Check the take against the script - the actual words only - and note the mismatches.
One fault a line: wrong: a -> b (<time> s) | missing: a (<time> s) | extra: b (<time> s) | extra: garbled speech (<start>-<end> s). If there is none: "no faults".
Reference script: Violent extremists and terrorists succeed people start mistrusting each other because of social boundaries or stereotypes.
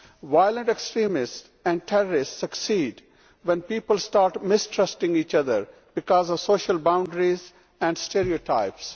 extra: when (3.4 s)
wrong: or -> and (7.8 s)